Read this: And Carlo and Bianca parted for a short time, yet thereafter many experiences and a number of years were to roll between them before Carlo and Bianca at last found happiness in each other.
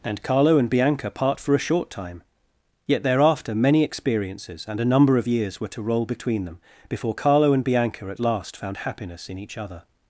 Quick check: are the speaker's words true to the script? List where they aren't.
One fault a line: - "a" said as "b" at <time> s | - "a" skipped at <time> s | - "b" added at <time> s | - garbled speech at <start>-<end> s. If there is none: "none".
- "parted" said as "part" at 1.1 s